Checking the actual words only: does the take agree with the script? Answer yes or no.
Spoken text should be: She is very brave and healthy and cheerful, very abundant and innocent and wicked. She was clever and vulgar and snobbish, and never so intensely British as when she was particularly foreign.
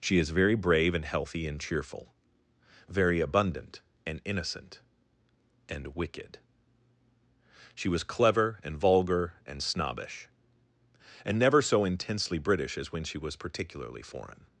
yes